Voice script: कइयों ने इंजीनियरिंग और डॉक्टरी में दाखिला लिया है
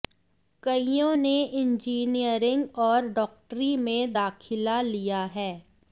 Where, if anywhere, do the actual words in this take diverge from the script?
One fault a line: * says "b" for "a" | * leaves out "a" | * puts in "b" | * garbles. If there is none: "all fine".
all fine